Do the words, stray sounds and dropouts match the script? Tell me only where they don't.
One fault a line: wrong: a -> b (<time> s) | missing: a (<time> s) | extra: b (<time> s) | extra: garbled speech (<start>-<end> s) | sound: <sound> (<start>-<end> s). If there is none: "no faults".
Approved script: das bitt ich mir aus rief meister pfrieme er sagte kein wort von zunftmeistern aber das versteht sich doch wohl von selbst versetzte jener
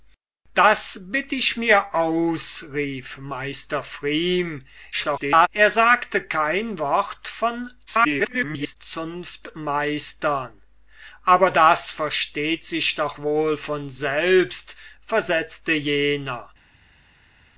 extra: garbled speech (4.9-5.5 s)
extra: garbled speech (7.9-8.8 s)